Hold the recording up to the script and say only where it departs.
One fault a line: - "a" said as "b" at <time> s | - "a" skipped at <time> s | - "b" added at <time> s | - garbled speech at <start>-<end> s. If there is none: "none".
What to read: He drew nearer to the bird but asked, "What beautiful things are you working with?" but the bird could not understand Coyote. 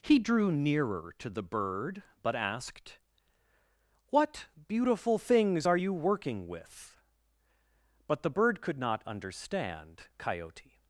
none